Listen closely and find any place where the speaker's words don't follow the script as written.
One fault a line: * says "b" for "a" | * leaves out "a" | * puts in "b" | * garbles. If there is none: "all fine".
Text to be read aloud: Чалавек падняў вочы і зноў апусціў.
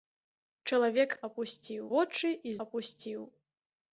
* says "апусціў" for "падняў"
* leaves out "зноў"